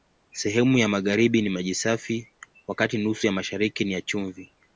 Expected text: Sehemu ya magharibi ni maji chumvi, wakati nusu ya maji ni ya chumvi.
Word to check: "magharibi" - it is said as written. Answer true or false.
true